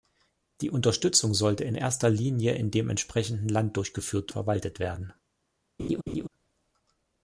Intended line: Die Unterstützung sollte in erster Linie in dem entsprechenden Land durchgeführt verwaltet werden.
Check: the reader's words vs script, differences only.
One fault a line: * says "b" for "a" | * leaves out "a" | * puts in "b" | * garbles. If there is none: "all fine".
all fine